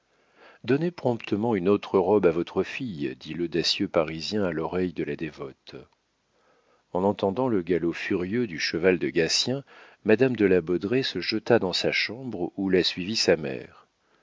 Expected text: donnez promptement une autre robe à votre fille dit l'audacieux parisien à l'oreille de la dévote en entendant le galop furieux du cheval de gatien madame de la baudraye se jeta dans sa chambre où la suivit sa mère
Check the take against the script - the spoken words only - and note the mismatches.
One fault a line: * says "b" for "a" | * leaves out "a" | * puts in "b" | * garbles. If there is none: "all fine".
all fine